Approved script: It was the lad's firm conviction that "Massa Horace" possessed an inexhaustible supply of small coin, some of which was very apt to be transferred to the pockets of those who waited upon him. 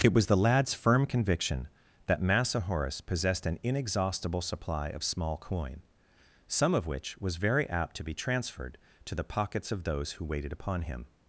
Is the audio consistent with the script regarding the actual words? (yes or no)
yes